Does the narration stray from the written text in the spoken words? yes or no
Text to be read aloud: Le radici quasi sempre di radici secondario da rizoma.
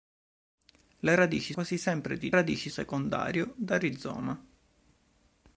no